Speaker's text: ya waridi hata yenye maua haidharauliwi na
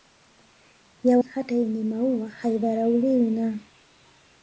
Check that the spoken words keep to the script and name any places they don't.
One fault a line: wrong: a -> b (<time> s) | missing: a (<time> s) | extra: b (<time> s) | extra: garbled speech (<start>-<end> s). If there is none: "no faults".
missing: waridi (1.2 s)